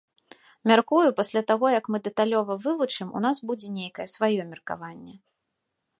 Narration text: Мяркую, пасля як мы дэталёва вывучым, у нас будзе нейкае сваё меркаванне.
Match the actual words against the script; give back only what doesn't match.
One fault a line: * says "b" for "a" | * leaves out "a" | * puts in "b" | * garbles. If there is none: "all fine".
* puts in "таго"